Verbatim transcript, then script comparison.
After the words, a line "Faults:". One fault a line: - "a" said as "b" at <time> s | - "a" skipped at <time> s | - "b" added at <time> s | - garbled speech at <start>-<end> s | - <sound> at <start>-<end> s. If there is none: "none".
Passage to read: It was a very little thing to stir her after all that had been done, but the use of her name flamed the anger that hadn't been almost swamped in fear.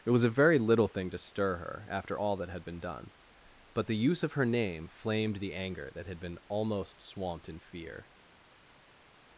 It was a very little thing to stir her after all that had been done, but the use of her name flamed the anger that had been almost swamped in fear.
Faults:
- "hadn't" said as "had" at 6.1 s